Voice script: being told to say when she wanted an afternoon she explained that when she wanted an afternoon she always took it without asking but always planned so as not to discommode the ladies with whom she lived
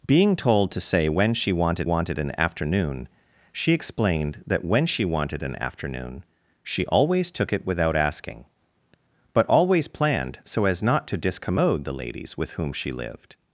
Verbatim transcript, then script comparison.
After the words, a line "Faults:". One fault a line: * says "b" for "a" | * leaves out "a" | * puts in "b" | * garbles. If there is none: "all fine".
being told to say when she wanted wanted an afternoon she explained that when she wanted an afternoon she always took it without asking but always planned so as not to discommode the ladies with whom she lived
Faults:
* puts in "wanted"